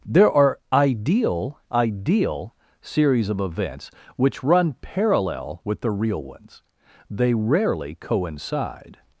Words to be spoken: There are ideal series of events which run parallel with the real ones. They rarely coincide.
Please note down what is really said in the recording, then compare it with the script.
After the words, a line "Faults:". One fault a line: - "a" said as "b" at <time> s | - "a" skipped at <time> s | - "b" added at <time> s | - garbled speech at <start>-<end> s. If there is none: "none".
There are ideal ideal series of events which run parallel with the real ones. They rarely coincide.
Faults:
- "ideal" added at 1.7 s